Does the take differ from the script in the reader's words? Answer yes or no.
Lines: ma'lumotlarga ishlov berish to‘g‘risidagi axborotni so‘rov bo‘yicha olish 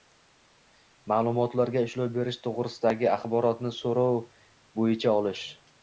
no